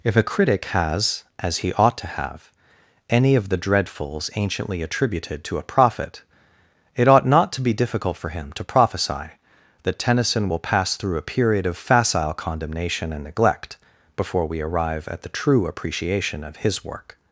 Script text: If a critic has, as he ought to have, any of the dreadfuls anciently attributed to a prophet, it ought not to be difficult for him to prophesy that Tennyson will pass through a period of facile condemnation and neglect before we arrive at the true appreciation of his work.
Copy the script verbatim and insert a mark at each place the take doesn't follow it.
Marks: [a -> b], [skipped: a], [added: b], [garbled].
If a critic has, as he ought to have, any of the dreadfuls anciently attributed to a prophet, it ought not to be difficult for him to prophesy that Tennyson will pass through a period of facile condemnation and neglect before we arrive at the true appreciation of his work.